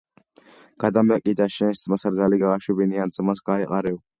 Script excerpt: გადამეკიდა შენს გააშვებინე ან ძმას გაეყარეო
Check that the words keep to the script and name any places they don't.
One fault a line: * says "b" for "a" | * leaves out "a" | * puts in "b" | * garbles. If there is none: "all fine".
* puts in "ძმას რძალი"